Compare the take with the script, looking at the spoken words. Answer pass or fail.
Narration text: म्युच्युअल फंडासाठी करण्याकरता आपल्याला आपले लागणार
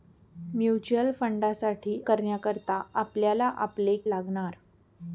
pass